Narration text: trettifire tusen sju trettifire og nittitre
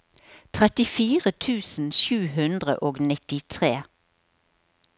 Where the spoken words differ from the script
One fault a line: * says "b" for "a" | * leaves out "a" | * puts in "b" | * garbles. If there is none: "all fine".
* says "hundre" for "trettifire"